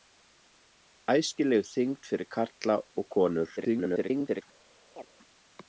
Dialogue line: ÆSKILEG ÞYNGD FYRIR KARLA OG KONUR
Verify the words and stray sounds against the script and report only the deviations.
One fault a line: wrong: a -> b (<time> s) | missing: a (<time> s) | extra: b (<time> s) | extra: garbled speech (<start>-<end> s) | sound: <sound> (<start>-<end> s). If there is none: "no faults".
extra: garbled speech (3.6-4.4 s)
sound: chirp (5.0-5.1 s)